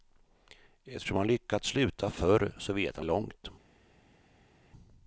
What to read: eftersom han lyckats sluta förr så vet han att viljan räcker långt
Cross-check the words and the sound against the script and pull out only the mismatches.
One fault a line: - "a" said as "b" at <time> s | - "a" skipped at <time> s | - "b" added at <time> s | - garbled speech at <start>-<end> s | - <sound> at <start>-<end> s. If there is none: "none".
- "att viljan räcker" skipped at 3.0 s